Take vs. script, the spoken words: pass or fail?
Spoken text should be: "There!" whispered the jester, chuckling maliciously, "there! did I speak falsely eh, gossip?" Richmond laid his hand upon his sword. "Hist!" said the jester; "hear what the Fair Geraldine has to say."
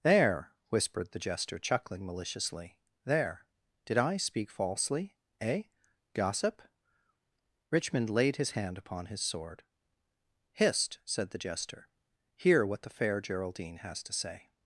pass